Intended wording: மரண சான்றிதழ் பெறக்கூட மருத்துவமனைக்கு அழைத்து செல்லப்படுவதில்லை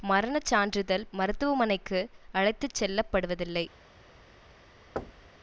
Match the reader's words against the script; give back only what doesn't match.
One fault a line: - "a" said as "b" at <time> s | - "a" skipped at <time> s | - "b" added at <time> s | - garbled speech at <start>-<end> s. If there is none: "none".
- "பெறக்கூட" skipped at 1.1 s